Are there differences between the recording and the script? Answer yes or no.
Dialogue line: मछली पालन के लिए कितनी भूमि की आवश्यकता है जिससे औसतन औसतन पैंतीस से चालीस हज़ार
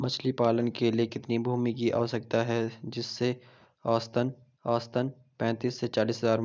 no